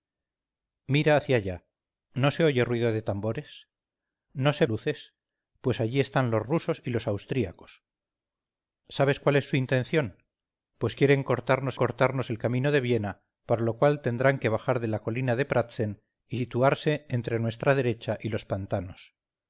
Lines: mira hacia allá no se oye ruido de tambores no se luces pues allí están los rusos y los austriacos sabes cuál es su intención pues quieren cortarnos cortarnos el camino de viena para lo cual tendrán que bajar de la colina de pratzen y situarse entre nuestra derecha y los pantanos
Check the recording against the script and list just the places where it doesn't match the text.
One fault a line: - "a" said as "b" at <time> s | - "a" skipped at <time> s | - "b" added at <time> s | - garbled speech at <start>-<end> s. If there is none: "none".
none